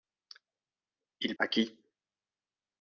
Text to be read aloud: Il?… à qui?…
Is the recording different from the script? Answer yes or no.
no